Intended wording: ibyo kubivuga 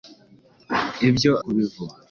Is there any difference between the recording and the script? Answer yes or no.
no